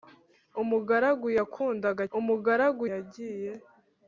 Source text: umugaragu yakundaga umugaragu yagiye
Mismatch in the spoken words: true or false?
false